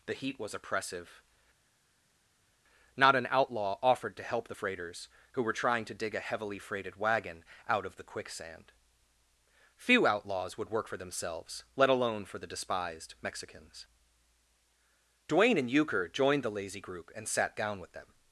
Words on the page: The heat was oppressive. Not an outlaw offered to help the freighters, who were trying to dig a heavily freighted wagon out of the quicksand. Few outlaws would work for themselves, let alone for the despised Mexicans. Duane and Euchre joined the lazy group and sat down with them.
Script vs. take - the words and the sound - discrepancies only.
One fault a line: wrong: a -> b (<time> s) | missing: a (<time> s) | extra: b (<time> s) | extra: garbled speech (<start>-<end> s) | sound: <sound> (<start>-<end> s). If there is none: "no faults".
no faults